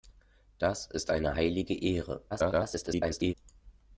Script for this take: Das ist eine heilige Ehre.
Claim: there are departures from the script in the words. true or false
true